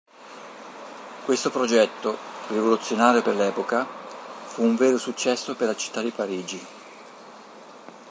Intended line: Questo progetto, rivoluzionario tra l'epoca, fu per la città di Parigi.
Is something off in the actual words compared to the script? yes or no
yes